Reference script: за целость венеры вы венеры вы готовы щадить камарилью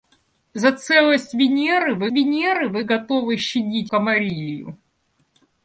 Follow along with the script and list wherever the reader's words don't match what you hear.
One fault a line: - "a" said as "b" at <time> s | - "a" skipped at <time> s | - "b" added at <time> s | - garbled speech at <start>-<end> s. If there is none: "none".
none